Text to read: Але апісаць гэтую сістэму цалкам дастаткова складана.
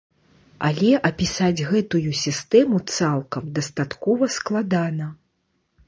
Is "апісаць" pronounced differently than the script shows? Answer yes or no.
no